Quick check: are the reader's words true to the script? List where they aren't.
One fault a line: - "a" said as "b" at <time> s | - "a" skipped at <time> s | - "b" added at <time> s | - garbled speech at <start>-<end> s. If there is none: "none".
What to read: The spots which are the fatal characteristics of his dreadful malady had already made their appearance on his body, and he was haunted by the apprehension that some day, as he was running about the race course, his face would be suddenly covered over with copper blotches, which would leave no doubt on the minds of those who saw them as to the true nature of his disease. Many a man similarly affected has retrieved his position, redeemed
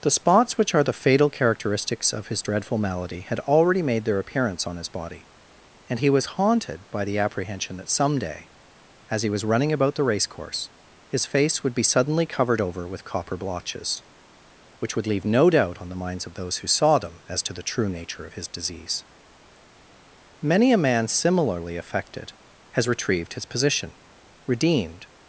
none